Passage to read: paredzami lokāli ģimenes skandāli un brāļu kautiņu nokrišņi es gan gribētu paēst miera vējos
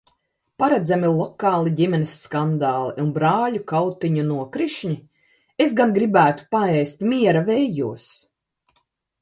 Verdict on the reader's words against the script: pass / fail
pass